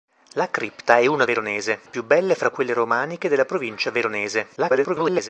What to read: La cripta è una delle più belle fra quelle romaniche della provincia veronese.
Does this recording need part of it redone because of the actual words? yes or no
yes